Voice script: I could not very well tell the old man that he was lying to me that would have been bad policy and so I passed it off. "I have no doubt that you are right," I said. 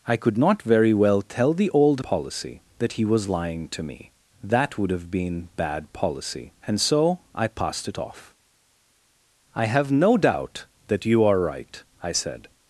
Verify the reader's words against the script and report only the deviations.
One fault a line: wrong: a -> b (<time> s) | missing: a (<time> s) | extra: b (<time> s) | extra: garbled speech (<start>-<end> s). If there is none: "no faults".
wrong: man -> policy (2.0 s)